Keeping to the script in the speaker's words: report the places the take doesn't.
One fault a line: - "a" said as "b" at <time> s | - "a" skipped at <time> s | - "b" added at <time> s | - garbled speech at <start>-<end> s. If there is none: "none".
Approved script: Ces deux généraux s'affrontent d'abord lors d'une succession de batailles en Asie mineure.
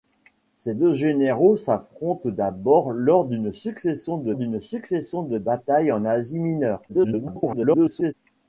- "d'une succession de" added at 4.3 s
- garbled speech at 6.9-8.1 s